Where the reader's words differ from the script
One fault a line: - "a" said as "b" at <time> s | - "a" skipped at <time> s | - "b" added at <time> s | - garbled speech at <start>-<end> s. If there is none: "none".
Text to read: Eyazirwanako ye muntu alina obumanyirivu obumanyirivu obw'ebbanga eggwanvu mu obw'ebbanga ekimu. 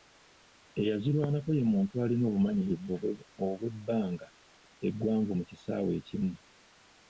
- "obumanyirivu" skipped at 2.9 s
- "obw'ebbanga" said as "kisaawe" at 5.5 s